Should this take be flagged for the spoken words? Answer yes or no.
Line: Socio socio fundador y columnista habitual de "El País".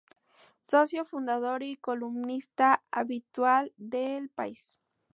yes